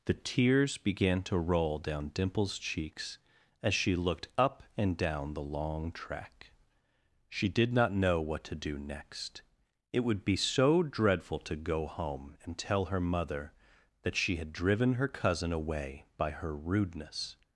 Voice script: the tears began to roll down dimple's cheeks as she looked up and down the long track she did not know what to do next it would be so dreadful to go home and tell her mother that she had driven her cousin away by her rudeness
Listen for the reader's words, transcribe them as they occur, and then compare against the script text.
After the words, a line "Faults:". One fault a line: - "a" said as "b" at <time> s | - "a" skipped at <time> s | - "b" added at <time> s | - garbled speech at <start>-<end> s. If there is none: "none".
the tears began to roll down dimple's cheeks as she looked up and down the long track she did not know what to do next it would be so dreadful to go home and tell her mother that she had driven her cousin away by her rudeness
Faults:
none